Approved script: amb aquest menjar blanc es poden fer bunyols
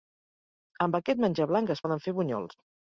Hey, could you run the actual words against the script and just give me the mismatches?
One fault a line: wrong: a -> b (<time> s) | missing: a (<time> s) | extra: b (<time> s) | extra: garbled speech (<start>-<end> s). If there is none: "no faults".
no faults